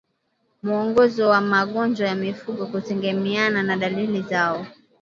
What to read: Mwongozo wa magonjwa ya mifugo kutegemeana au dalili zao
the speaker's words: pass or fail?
fail